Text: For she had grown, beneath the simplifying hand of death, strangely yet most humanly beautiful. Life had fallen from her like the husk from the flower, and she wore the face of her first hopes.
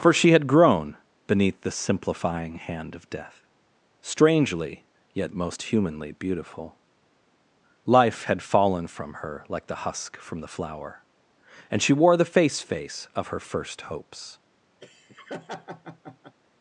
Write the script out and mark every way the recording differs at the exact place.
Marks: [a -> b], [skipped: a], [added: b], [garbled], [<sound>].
For she had grown, beneath the simplifying hand of death, strangely yet most humanly beautiful. Life had fallen from her like the husk from the flower, and she wore the face [added: face] of her first hopes. [laugh]